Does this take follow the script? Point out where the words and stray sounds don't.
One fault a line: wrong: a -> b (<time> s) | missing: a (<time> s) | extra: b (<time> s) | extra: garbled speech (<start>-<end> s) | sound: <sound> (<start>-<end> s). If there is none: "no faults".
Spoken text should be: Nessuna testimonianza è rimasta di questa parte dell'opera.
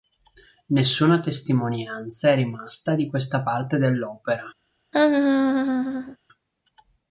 sound: laugh (4.9-6.2 s)